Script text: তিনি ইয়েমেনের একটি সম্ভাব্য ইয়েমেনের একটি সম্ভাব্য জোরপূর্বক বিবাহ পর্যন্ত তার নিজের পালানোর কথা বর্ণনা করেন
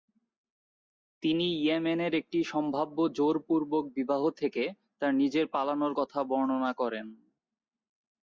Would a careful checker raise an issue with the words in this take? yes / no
yes